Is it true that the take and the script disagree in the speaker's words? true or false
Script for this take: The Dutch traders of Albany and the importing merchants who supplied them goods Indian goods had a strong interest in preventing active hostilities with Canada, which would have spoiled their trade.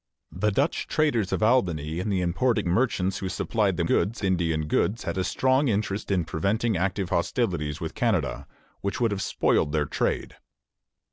false